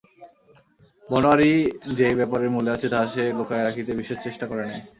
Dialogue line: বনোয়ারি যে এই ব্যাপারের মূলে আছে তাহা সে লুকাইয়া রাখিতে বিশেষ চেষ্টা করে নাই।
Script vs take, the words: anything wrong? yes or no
no